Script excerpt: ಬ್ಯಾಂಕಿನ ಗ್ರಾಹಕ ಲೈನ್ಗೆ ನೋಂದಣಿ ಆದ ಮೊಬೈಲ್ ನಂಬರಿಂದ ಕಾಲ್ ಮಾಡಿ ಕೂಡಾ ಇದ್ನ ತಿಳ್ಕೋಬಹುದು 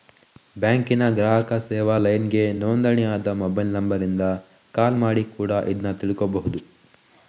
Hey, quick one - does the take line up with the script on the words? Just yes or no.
no